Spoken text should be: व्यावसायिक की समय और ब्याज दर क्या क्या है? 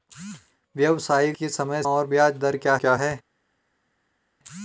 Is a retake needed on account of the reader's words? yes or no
no